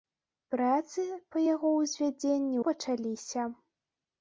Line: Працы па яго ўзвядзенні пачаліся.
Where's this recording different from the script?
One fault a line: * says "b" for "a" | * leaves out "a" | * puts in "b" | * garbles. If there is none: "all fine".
all fine